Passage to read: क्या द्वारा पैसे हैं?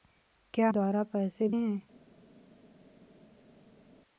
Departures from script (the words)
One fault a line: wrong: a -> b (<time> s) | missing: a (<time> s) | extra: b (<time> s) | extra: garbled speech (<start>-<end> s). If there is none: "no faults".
no faults